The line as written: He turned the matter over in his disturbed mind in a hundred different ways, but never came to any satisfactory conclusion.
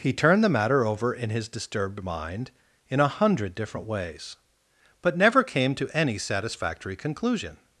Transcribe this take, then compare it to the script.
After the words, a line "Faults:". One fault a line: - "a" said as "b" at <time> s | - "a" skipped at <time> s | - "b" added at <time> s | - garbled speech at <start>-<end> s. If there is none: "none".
He turned the matter over in his disturbed mind in a hundred different ways, but never came to any satisfactory conclusion.
Faults:
none